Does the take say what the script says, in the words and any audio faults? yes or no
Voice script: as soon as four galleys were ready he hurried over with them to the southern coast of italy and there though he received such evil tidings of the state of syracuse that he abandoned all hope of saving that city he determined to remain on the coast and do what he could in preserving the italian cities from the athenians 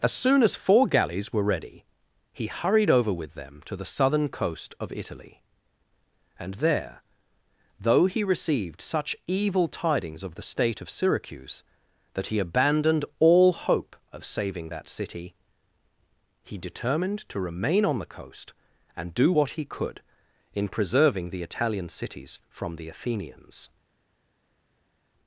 yes